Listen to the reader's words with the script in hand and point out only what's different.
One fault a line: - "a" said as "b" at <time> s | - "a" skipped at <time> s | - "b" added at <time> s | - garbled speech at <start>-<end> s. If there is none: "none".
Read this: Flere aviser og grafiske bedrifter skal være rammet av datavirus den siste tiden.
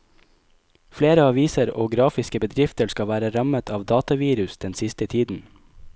none